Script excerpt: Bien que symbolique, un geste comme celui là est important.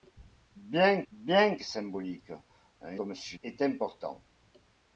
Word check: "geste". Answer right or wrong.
wrong